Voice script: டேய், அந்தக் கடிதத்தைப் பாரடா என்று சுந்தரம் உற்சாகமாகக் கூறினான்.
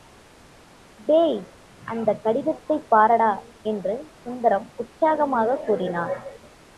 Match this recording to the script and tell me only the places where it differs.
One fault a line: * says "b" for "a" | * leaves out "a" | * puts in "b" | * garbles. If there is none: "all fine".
all fine